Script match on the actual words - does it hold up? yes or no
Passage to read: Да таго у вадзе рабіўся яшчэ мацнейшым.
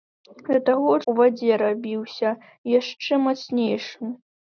yes